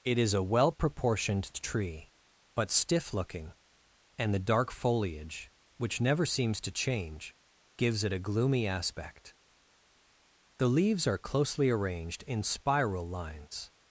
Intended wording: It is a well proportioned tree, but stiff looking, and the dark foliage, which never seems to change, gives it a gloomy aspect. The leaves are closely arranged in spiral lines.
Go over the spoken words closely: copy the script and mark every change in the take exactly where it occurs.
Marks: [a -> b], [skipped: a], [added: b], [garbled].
It is a well proportioned tree, but stiff looking, and the dark foliage, which never seems to change, gives it a gloomy aspect. The leaves are closely arranged in spiral lines.